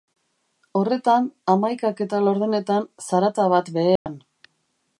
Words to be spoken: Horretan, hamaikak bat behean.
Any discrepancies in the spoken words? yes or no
yes